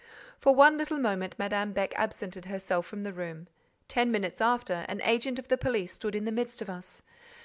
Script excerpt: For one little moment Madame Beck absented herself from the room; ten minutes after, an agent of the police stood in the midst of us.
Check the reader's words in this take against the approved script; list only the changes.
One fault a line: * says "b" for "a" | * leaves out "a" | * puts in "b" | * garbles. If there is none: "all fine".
all fine